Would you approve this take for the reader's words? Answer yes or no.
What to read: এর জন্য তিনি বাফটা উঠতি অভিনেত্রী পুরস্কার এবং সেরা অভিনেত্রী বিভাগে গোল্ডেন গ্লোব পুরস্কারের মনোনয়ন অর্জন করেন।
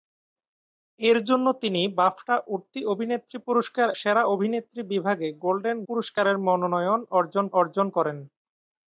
no